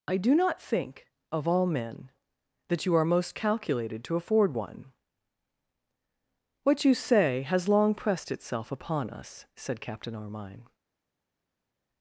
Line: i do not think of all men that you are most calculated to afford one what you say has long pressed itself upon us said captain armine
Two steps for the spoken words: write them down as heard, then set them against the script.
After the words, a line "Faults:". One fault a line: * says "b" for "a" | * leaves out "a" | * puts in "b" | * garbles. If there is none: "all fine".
i do not think of all men that you are most calculated to afford one what you say has long pressed itself upon us said captain armine
Faults:
all fine